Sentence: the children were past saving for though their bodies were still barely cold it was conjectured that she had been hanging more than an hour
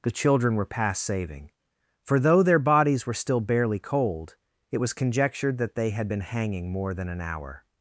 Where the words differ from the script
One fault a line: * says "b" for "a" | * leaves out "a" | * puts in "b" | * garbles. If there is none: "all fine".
* says "they" for "she"